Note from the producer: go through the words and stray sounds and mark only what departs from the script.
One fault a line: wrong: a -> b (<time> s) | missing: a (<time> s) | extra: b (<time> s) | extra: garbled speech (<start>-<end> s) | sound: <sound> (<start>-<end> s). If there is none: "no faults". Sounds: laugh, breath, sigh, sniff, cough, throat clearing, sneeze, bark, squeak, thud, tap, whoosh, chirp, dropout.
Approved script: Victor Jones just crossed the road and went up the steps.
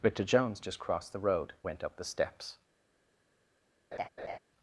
missing: and (1.5 s)
sound: laugh (3.9-4.4 s)